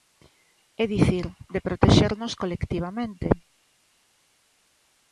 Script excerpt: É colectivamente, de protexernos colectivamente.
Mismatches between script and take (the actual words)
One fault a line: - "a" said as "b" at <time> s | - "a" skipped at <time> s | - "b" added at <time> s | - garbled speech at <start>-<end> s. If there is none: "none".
- "colectivamente" said as "dicir" at 0.9 s